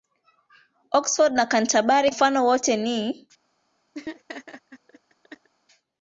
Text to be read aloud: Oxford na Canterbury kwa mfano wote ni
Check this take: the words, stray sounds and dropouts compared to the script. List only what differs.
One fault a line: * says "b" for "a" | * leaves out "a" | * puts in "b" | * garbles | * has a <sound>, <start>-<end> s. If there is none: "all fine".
* leaves out "kwa"
* has a laugh, 3.9-5.5 s